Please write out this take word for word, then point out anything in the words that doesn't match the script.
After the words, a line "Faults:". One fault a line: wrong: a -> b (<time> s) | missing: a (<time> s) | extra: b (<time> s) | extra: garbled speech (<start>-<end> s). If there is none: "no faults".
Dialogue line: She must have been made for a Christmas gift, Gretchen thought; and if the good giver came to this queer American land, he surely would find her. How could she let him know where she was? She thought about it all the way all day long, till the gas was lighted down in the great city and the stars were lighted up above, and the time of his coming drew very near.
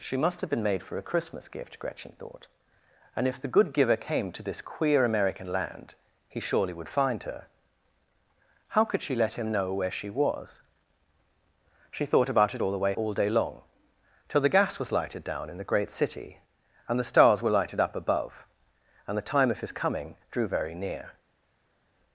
She must have been made for a Christmas gift, Gretchen thought; and if the good giver came to this queer American land, he surely would find her. How could she let him know where she was? She thought about it all the way all day long, till the gas was lighted down in the great city and the stars were lighted up above, and the time of his coming drew very near.
Faults:
no faults